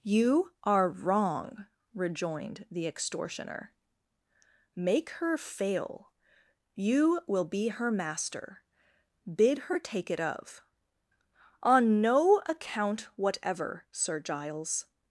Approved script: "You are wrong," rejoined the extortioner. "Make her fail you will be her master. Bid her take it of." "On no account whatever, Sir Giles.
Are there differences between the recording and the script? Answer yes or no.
no